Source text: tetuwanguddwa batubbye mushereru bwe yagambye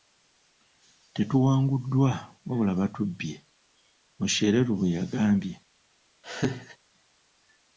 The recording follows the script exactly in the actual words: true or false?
false